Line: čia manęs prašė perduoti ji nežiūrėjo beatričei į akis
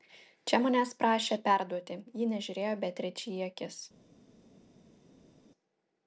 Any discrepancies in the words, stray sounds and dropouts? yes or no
no